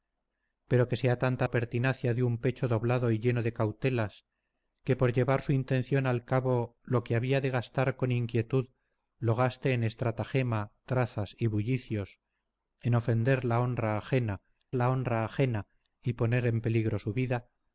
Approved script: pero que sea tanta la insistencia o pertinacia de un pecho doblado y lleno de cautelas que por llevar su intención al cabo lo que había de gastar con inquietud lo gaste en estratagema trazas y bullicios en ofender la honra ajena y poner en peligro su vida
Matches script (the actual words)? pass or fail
fail